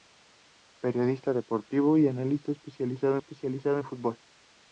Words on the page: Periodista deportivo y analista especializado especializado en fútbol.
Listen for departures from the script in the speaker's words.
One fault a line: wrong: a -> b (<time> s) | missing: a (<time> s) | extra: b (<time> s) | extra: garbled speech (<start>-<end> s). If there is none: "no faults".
no faults